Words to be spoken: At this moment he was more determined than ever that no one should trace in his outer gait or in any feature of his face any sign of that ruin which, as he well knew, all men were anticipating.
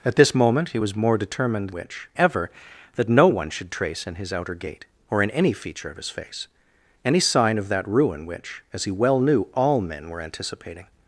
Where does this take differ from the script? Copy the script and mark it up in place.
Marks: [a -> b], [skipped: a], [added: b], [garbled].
At this moment he was more determined [than -> which] ever that no one should trace in his outer gait or in any feature of his face any sign of that ruin which, as he well knew, all men were anticipating.